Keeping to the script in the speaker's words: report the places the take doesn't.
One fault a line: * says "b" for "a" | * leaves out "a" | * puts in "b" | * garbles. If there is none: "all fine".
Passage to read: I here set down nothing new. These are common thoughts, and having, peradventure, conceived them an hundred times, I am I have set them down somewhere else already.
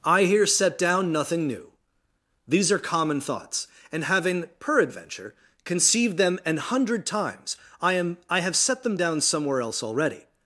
all fine